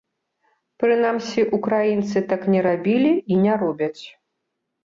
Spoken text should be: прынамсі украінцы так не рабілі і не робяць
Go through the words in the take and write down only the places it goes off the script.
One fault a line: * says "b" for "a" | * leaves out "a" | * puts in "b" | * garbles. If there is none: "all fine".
all fine